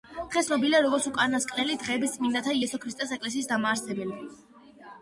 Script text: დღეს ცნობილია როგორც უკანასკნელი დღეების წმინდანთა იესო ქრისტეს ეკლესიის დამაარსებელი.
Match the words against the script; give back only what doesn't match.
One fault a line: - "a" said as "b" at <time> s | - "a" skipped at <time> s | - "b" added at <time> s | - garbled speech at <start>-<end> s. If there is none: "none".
none